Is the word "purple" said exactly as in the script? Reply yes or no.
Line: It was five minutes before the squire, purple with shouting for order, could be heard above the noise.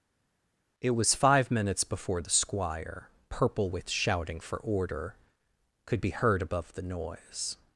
yes